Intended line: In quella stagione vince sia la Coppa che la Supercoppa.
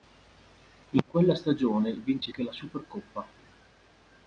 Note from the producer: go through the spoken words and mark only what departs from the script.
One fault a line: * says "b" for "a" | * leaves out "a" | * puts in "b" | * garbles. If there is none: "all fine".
* leaves out "sia la Coppa"